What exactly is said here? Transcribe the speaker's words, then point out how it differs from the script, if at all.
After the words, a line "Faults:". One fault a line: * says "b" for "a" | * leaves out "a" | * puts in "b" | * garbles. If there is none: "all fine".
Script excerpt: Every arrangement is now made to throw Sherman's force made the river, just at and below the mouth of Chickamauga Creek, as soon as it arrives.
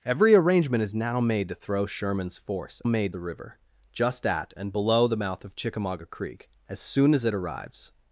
Every arrangement is now made to throw Sherman's force made the river, just at and below the mouth of Chickamauga Creek, as soon as it arrives.
Faults:
all fine